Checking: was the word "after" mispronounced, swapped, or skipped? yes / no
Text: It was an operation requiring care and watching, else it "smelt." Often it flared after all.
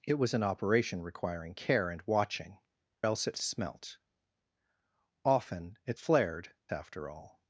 no